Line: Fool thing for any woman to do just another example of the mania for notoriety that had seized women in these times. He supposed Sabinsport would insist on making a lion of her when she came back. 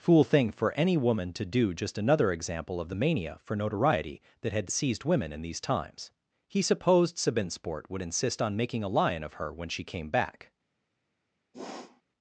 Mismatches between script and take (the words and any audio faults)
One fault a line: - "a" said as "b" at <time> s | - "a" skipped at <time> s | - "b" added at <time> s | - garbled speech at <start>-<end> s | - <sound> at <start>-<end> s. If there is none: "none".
- sniff at 11.5-12.0 s